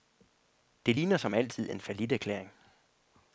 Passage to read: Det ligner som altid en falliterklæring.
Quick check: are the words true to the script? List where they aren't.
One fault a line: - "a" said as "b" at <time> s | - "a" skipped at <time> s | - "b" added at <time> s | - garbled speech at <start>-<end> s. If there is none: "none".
none